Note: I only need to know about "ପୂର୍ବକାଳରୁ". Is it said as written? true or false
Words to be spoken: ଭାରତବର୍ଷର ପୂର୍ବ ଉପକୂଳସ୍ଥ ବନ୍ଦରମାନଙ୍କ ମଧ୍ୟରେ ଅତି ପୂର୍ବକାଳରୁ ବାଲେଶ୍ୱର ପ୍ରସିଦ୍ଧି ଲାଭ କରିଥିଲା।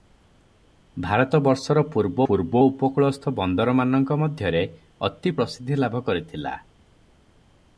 false